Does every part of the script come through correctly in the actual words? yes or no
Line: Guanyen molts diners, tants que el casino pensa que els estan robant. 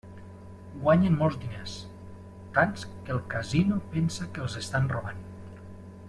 yes